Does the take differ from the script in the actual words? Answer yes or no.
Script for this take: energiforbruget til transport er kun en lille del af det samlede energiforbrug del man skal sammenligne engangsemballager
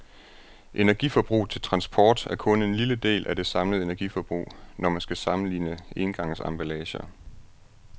yes